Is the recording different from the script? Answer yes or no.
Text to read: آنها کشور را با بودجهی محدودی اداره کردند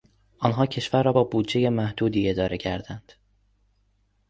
no